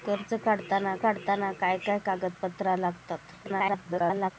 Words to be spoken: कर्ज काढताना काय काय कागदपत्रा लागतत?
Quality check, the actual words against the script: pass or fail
fail